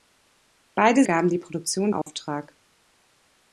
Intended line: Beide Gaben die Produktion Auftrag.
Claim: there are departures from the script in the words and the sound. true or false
true